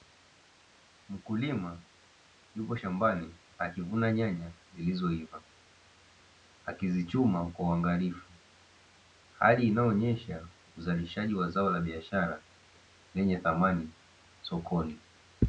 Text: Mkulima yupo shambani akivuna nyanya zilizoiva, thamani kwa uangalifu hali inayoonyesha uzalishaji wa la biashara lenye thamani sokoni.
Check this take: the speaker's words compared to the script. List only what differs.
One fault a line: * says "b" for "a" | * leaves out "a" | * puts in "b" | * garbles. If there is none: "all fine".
* says "akizichuma" for "thamani"
* puts in "zao"